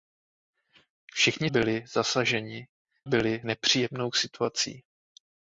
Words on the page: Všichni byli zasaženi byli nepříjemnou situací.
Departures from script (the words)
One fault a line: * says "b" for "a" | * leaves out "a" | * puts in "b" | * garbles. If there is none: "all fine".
all fine